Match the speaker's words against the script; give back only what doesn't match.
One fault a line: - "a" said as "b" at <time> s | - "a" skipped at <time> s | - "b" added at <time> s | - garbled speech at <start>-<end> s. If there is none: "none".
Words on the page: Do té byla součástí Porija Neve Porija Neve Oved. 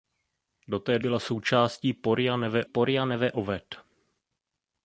none